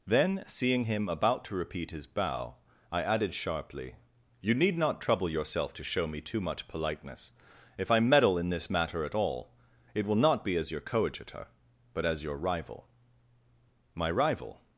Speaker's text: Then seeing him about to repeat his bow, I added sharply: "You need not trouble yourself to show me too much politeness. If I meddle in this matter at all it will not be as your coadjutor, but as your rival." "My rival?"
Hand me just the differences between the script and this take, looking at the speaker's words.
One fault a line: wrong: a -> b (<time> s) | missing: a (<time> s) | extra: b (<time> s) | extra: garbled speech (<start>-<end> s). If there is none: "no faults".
no faults